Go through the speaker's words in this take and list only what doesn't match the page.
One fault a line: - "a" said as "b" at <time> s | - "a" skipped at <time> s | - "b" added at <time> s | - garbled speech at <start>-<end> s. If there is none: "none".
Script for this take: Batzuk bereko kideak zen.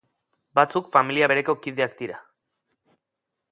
- "familia" added at 0.9 s
- "zen" said as "dira" at 2.0 s